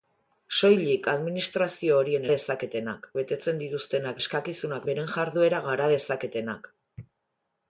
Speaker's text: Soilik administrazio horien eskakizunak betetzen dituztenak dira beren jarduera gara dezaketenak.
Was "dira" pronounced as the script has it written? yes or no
no